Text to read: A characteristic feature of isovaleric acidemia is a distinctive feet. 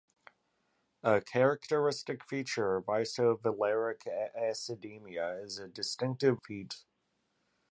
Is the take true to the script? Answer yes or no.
yes